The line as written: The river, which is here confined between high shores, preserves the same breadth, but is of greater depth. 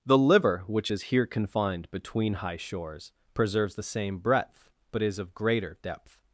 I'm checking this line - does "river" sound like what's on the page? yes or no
no